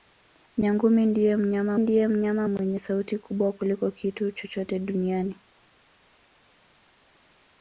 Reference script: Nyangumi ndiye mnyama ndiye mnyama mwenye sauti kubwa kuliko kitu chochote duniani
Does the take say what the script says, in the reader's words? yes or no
yes